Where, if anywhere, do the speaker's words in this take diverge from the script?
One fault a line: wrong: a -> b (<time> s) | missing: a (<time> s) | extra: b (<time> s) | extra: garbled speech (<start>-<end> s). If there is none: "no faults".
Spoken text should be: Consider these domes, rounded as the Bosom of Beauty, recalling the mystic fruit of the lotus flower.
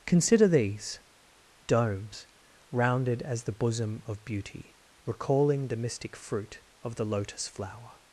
no faults